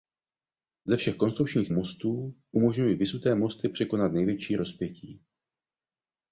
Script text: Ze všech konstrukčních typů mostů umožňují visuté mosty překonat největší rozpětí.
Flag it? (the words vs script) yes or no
yes